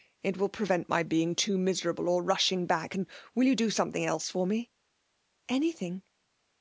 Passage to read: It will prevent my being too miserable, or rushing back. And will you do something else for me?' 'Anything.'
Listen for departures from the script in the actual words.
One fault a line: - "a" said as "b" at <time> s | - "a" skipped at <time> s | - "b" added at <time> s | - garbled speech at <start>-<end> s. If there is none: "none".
none